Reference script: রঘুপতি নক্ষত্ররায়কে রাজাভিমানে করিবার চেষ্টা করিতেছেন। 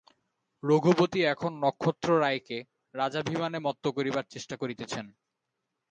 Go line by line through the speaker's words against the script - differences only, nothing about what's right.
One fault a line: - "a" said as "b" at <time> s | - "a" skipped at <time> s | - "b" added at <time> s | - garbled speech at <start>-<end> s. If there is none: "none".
- "এখন" added at 1.2 s
- "মত্ত" added at 3.6 s